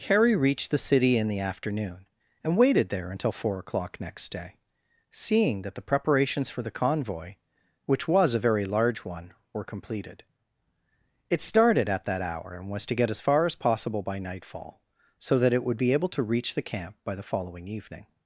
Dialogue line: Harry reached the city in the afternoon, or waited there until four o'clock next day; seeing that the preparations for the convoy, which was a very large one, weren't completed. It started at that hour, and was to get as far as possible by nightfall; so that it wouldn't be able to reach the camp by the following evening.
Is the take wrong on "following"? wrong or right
right